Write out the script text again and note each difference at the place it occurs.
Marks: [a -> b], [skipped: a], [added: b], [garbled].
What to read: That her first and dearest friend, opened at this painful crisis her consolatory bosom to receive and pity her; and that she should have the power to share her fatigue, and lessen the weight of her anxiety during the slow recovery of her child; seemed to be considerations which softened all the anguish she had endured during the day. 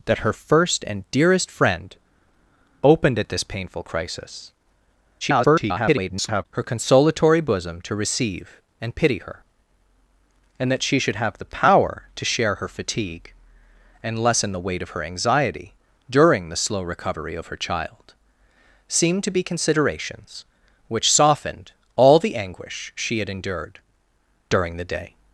That her first and dearest friend, opened at this painful crisis [garbled] her consolatory bosom to receive and pity her; and that she should have the power to share her fatigue, and lessen the weight of her anxiety during the slow recovery of her child; seemed to be considerations which softened all the anguish she had endured during the day.